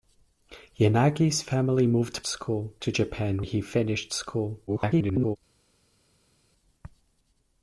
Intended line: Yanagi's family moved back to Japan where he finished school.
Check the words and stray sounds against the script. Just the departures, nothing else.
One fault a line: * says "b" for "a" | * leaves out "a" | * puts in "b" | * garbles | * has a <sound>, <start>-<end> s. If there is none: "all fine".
* says "school" for "back"
* leaves out "where"
* garbles